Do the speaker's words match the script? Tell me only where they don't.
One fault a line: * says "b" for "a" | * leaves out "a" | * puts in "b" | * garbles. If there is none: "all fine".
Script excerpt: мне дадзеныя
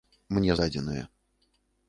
all fine